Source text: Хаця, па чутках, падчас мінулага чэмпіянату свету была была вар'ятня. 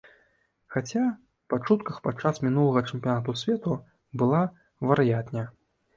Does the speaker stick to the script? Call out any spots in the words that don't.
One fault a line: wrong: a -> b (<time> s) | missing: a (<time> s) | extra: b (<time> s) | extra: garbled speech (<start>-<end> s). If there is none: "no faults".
missing: была (4.4 s)